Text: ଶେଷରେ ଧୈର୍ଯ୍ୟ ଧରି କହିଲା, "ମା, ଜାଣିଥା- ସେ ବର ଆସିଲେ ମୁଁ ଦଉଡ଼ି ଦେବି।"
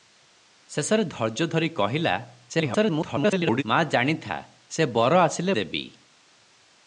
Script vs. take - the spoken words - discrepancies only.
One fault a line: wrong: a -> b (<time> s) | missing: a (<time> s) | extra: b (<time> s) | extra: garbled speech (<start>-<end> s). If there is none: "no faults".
extra: garbled speech (2.5-3.6 s)
missing: ମୁଁ ଦଉଡ଼ି (5.5 s)